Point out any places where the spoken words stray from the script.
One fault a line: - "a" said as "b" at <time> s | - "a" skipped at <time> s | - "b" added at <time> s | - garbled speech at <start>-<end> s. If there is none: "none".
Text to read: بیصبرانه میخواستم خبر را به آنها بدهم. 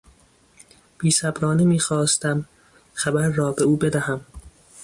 - "آنها" said as "او" at 3.6 s